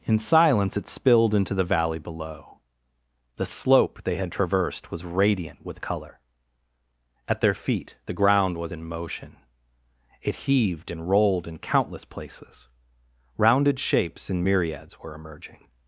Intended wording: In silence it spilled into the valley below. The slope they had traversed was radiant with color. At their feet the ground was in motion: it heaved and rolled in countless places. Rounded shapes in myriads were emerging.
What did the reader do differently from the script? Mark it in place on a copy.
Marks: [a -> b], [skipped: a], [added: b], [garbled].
In silence it spilled into the valley below. The slope they had traversed was radiant with color. At their feet the ground was in motion: it heaved and rolled in countless places. Rounded shapes in myriads were emerging.